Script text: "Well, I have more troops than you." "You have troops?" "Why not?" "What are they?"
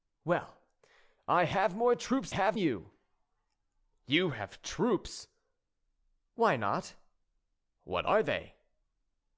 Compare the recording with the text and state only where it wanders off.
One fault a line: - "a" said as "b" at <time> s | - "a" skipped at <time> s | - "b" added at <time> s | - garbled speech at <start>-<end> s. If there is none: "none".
- "than" said as "have" at 2.3 s